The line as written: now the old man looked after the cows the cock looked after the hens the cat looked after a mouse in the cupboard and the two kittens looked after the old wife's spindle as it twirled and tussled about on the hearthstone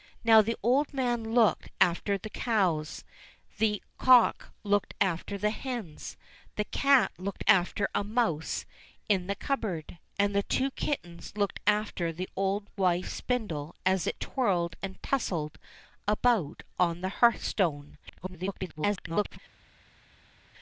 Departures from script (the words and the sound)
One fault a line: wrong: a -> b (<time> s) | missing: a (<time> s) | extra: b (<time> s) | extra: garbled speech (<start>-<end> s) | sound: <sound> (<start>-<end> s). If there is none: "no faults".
extra: garbled speech (18.1-19.4 s)